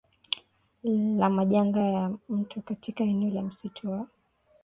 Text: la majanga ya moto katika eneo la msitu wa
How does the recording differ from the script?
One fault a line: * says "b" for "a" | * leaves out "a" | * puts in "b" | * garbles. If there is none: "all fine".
all fine